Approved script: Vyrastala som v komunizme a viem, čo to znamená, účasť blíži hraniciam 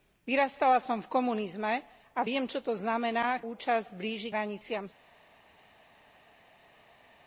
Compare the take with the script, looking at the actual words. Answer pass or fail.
pass